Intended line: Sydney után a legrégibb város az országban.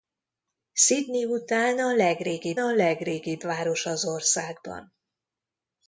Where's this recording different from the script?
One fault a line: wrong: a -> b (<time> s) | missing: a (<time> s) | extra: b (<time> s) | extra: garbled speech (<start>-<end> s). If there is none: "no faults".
extra: a legrégibb (2.6 s)